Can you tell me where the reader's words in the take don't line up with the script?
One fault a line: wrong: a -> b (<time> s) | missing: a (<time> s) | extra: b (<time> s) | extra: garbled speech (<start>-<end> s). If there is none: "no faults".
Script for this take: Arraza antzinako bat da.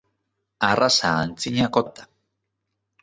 no faults